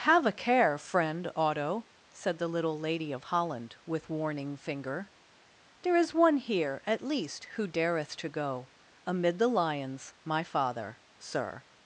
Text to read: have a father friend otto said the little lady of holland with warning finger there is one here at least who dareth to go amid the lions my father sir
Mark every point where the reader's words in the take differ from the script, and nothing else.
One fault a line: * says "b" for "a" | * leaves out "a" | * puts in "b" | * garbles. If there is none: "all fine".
* says "care" for "father"